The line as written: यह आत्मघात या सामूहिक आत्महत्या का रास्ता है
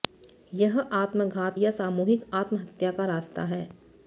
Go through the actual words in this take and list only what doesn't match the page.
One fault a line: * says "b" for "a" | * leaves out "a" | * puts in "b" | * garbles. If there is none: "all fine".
all fine